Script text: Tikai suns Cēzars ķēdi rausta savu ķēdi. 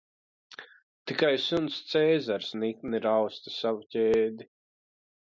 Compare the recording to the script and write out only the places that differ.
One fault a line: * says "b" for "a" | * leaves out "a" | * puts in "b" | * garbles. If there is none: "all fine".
* says "nikni" for "ķēdi"